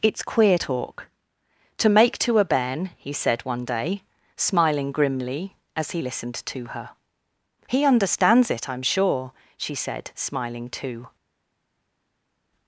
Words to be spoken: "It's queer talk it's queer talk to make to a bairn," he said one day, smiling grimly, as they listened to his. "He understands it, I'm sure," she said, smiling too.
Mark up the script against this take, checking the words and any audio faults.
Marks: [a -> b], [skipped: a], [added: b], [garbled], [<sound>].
"It's queer talk [skipped: it's queer talk] to make to a bairn," he said one day, smiling grimly, as [they -> he] listened to [his. -> her] "He understands it, I'm sure," she said, smiling too.